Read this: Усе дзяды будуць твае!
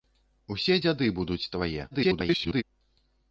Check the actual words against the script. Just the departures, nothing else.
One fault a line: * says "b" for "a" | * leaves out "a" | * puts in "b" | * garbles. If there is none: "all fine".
* garbles